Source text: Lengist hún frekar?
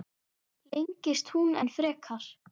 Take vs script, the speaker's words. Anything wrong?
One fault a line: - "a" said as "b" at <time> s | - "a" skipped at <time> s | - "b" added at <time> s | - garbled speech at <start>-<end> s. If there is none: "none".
- "enn" added at 1.6 s